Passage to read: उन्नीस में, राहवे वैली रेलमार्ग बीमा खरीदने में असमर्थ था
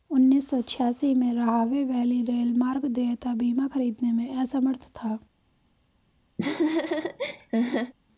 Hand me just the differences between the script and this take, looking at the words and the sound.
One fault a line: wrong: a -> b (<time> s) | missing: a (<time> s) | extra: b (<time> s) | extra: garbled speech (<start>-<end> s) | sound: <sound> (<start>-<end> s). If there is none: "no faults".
extra: सौ छियासी (0.5 s)
extra: देयता (2.9 s)
sound: laugh (6.4-7.9 s)